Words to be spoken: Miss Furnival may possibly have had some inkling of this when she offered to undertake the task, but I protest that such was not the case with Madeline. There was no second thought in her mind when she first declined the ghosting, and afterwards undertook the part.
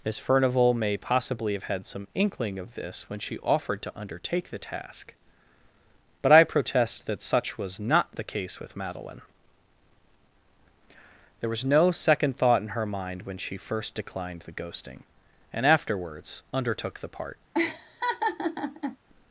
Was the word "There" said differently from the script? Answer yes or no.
no